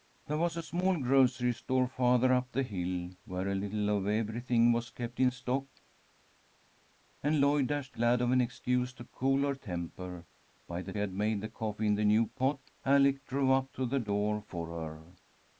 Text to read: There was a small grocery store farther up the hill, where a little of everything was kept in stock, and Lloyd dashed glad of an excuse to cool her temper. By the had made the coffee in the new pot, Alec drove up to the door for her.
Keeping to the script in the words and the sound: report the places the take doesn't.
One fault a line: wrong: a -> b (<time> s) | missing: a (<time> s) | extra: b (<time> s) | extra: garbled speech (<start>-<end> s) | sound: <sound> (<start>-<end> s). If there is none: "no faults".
no faults